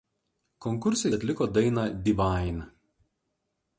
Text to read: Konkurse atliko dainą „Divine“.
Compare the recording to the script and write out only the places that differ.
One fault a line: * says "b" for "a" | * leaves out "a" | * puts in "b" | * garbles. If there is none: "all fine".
all fine